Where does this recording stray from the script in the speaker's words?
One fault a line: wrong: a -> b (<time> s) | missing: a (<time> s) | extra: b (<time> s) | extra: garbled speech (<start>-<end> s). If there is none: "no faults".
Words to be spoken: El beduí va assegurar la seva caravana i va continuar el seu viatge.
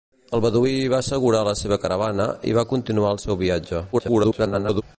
extra: garbled speech (3.9-4.8 s)